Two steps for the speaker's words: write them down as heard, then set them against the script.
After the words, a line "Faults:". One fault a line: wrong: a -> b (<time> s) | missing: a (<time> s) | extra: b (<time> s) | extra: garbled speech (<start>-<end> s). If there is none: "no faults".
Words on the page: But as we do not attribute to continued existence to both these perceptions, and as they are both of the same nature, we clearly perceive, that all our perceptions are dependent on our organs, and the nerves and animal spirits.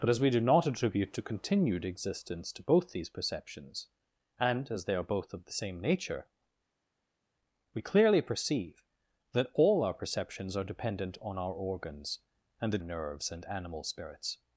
But as we do not attribute to continued existence to both these perceptions, and as they are both of the same nature, we clearly perceive, that all our perceptions are dependent on our organs, and the nerves and animal spirits.
Faults:
no faults